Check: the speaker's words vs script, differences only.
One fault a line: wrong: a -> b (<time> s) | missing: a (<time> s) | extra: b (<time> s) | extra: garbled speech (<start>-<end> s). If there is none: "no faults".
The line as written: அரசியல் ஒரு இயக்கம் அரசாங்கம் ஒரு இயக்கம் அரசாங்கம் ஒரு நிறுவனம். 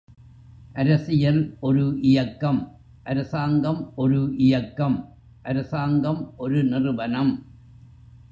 no faults